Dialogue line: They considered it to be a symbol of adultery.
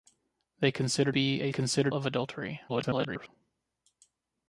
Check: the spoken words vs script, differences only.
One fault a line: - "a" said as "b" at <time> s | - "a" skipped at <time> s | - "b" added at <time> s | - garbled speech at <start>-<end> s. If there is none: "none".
- "it to" skipped at 1.1 s
- "symbol" said as "considered" at 1.5 s
- garbled speech at 2.7-3.3 s